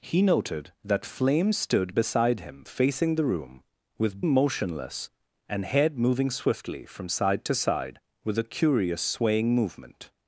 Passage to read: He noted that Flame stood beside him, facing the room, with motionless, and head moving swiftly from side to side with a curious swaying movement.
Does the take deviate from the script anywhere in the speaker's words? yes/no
no